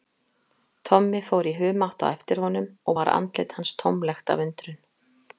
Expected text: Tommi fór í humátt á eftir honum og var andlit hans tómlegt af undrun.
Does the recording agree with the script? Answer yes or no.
yes